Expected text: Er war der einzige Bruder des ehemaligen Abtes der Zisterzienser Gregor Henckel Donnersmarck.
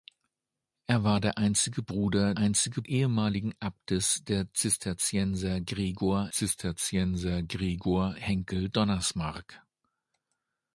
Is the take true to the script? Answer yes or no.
no